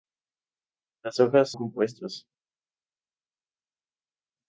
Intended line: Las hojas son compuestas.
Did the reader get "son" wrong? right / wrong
wrong